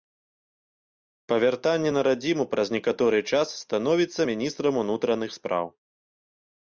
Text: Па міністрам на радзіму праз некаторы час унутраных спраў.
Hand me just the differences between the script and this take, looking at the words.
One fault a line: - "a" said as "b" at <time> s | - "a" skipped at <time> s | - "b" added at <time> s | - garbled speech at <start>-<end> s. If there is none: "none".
- "міністрам" said as "вяртанні" at 1.4 s
- "становіцца міністрам" added at 3.7 s